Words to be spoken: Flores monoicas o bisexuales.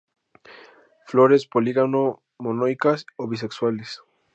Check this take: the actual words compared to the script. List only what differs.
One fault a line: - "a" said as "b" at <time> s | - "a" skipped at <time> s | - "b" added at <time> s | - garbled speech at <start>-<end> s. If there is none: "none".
- "polígamo" added at 1.4 s